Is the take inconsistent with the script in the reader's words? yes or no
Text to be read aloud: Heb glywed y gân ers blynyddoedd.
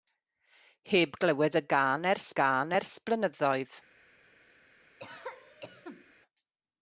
yes